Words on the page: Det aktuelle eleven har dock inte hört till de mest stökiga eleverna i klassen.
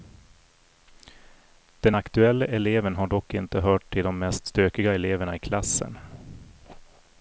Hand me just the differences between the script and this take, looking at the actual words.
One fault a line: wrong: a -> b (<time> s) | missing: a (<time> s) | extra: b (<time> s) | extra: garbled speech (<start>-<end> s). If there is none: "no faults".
wrong: Det -> Den (1.8 s)